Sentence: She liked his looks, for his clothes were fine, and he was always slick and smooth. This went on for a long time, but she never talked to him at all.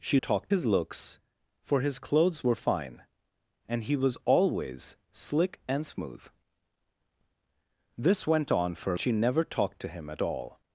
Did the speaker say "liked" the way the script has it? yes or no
no